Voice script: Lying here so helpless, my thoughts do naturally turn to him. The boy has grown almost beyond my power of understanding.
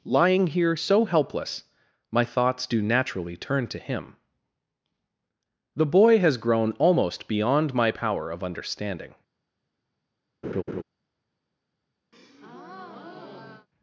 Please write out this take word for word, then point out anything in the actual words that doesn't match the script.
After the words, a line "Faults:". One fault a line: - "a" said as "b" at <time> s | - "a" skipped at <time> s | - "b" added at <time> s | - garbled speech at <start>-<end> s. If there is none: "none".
Lying here so helpless, my thoughts do naturally turn to him. The boy has grown almost beyond my power of understanding.
Faults:
none